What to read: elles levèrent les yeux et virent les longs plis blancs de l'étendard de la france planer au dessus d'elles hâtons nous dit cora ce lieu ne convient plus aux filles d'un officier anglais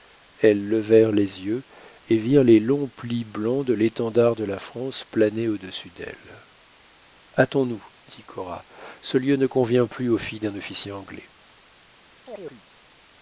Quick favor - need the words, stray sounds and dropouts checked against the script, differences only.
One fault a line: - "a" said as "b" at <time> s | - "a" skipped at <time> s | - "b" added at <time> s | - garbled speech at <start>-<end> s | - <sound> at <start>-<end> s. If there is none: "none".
- chirp at 12.3-12.6 s